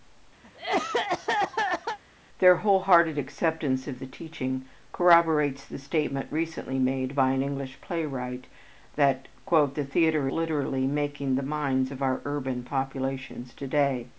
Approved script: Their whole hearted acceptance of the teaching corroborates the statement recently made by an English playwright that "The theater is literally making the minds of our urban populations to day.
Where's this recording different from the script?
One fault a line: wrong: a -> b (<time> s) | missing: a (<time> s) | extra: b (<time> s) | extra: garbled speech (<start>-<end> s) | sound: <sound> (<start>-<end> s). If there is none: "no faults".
sound: cough (0.4-2.0 s)
missing: is (10.3 s)